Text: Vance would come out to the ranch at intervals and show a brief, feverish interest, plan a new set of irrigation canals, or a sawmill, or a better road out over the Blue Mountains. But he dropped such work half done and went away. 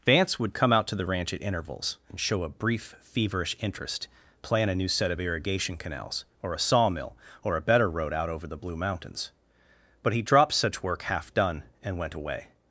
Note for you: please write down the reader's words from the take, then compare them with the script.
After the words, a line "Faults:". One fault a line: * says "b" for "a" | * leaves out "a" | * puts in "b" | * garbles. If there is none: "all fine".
Vance would come out to the ranch at intervals and show a brief, feverish interest, plan a new set of irrigation canals, or a sawmill, or a better road out over the Blue Mountains. But he dropped such work half done and went away.
Faults:
all fine